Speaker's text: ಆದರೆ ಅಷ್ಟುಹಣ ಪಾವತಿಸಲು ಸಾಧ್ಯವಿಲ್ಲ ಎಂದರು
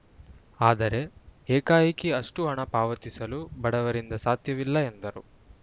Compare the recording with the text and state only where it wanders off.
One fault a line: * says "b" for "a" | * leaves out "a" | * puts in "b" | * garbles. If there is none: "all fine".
* puts in "ಏಕಾಏಕಿ"
* puts in "ಬಡವರಿಂದ"